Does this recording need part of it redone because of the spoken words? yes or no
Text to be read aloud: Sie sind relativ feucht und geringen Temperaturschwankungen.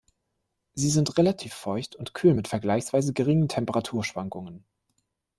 yes